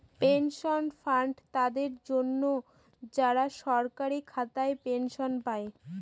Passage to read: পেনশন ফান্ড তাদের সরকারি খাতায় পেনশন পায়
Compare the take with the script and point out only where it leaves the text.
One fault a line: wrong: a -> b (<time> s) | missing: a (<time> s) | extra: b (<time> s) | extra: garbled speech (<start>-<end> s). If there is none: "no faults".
extra: জন্য যারা (2.1 s)